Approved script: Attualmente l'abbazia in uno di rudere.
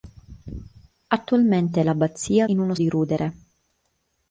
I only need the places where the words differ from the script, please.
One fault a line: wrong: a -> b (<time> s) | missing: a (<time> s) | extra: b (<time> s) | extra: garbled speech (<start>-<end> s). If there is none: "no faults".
no faults